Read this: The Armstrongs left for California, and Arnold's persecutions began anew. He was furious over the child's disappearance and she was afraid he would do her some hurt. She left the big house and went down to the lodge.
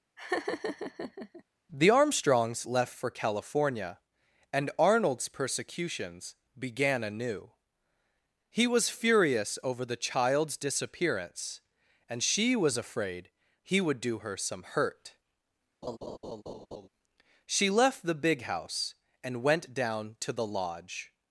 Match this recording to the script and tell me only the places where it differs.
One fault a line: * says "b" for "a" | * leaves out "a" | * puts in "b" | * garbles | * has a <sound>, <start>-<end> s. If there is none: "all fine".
* has a laugh, 0.2-1.4 s
* has a laugh, 15.8-16.9 s